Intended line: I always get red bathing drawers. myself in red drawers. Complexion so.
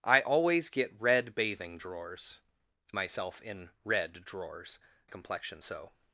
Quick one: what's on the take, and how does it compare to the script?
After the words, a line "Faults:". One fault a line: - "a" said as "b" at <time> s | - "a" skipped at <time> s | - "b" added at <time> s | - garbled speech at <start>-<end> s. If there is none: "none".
I always get red bathing drawers. myself in red drawers. Complexion so.
Faults:
none